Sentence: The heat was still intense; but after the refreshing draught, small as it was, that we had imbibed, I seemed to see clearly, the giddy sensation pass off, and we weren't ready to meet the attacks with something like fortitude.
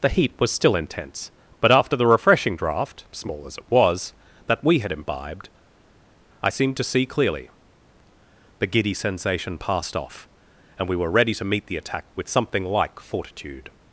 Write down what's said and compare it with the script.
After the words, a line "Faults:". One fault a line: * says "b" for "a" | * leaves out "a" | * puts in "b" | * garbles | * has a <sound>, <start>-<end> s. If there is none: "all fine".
The heat was still intense; but after the refreshing draught, small as it was, that we had imbibed, I seemed to see clearly, the giddy sensation passed off, and we were ready to meet the attack with something like fortitude.
Faults:
* says "passed" for "pass"
* says "were" for "weren't"
* says "attack" for "attacks"